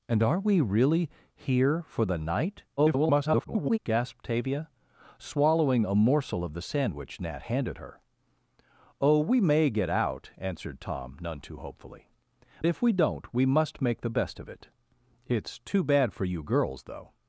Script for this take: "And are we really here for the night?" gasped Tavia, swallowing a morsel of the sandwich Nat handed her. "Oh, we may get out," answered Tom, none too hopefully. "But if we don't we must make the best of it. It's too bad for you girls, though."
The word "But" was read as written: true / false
false